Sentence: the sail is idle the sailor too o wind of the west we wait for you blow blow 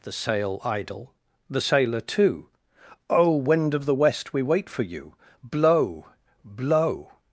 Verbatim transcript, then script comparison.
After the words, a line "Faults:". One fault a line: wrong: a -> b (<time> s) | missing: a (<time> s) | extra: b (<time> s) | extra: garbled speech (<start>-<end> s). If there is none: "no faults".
the sail idle the sailor too o wind of the west we wait for you blow blow
Faults:
missing: is (0.6 s)